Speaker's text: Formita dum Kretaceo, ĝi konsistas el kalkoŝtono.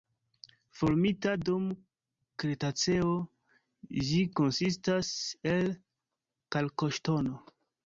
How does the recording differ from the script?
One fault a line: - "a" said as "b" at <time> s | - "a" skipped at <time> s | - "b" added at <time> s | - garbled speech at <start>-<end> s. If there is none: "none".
none